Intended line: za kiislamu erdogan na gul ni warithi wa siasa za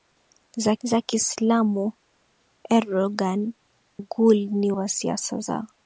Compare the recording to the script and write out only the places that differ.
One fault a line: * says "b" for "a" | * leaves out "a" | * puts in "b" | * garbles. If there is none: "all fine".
* puts in "za"
* leaves out "na"
* leaves out "warithi"